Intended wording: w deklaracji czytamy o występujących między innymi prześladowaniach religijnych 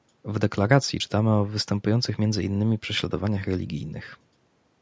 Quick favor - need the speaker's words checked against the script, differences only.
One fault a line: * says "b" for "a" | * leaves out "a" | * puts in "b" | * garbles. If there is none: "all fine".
all fine